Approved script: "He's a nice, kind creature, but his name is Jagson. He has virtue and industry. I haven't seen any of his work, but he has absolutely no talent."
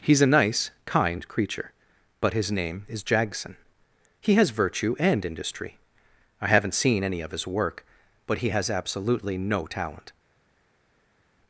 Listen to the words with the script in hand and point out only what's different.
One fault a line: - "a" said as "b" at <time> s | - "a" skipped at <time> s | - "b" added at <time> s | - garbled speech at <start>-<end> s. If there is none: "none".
none